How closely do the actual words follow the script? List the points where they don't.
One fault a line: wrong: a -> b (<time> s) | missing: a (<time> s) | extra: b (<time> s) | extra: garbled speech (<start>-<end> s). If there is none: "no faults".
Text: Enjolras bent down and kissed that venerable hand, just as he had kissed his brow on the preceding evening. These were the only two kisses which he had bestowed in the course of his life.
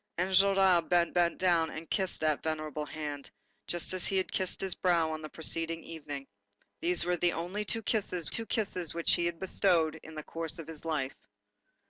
extra: bent (1.1 s)
extra: two kisses (8.3 s)